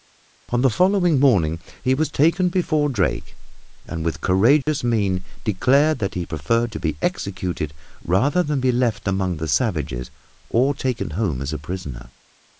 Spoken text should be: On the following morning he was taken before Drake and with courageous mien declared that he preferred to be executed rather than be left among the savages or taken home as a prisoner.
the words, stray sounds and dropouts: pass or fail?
fail